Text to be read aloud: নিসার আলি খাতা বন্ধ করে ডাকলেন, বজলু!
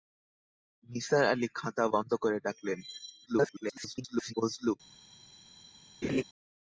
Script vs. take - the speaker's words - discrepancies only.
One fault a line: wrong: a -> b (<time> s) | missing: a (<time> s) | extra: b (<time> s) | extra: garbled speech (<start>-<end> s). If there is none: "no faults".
extra: garbled speech (3.3-4.3 s)